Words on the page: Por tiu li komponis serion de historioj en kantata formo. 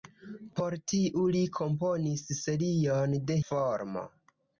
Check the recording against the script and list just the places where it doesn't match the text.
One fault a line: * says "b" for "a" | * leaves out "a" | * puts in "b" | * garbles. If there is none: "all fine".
* leaves out "historioj en kantata"